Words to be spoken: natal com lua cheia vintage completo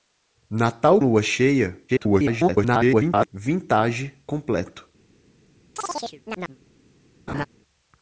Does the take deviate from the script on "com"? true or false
true